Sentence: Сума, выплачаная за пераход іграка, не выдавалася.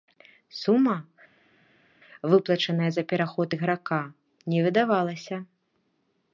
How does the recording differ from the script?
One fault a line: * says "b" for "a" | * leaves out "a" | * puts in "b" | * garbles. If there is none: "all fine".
all fine